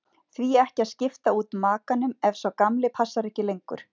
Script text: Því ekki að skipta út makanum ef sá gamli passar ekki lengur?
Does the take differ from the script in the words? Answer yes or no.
no